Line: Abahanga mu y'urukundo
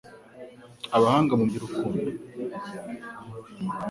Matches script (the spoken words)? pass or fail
pass